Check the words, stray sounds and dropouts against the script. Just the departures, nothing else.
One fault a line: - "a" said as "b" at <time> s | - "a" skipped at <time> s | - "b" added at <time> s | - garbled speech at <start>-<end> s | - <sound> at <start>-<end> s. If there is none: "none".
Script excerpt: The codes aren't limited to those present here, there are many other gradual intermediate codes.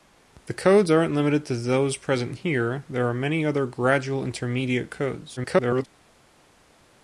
- garbled speech at 5.4-5.9 s